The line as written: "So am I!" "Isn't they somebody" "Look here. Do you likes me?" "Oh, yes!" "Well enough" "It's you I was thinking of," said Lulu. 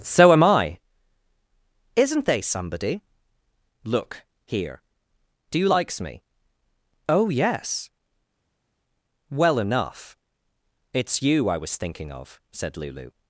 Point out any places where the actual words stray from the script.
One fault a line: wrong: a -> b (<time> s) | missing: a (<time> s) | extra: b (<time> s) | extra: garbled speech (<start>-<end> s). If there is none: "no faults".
no faults